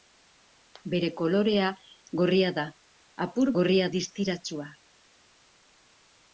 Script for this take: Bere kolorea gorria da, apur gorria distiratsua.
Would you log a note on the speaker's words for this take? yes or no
no